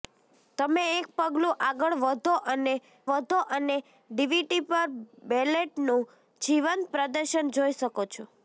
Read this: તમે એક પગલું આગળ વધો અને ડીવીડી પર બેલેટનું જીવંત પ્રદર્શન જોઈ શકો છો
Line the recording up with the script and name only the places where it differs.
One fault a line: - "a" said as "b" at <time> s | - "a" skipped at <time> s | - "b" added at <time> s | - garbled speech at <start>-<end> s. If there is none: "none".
- "વધો અને" added at 3.1 s